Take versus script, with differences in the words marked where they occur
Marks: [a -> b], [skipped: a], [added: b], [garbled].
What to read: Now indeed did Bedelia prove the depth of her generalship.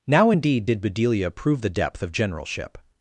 Now indeed did Bedelia prove the depth of [skipped: her] generalship.